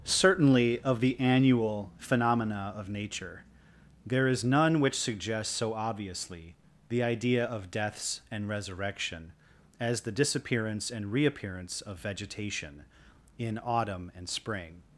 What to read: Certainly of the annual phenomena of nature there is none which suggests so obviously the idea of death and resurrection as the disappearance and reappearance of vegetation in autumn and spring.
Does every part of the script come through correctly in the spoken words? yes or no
no